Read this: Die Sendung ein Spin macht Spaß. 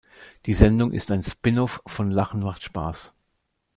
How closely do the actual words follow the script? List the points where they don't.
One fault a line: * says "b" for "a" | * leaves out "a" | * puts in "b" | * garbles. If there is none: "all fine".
* puts in "ist"
* puts in "off von Lachen"